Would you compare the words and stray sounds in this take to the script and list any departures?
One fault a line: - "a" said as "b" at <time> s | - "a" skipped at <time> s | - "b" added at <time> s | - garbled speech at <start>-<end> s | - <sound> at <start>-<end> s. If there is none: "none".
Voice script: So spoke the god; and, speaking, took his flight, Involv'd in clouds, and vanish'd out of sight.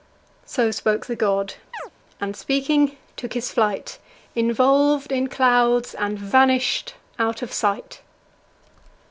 - chirp at 1.7-1.9 s